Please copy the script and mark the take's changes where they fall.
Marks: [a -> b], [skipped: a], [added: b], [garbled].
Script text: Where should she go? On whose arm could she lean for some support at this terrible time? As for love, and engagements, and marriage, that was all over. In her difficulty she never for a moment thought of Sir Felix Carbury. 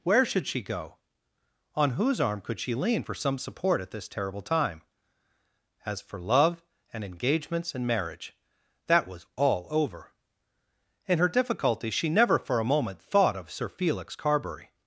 Where should she go? On whose arm could she lean for some support at this terrible time? As for love, and engagements, and marriage, that was all over. In her difficulty she never for a moment thought of Sir Felix Carbury.